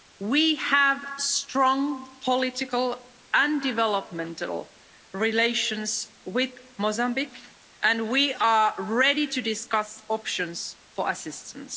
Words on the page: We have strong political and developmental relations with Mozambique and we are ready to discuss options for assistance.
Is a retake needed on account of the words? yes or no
no